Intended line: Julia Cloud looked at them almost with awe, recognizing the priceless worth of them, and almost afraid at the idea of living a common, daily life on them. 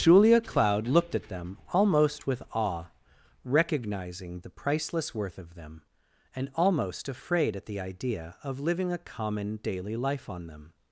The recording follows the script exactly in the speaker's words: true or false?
true